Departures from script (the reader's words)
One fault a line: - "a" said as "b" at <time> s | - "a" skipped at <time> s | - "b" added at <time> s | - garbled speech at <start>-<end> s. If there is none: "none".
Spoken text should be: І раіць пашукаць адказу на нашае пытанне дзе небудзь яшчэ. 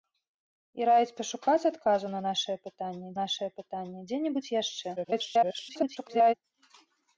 - "нашае пытанне" added at 3.2 s
- garbled speech at 5.0-6.3 s